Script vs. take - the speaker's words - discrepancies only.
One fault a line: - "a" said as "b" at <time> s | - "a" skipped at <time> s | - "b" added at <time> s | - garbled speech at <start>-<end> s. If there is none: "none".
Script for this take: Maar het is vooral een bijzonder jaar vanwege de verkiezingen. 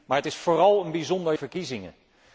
- "jaar vanwege de" skipped at 1.3 s